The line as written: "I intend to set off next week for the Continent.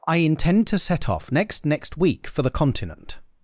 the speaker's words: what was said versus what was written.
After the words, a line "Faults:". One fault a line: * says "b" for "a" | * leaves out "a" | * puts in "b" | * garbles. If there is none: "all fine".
"I intend to set off next next week for the Continent.
Faults:
* puts in "next"